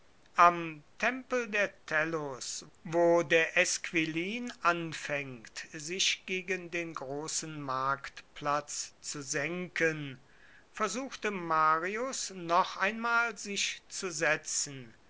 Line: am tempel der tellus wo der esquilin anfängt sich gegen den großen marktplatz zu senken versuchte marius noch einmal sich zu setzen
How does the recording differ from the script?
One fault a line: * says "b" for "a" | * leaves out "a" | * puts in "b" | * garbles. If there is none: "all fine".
all fine